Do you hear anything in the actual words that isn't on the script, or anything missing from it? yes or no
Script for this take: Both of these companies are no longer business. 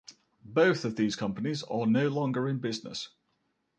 yes